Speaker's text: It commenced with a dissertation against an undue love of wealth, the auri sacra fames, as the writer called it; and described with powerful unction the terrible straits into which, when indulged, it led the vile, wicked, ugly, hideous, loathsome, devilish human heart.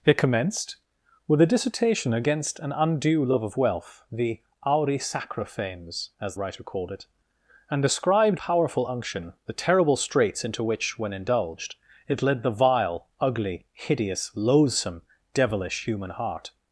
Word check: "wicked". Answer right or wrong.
wrong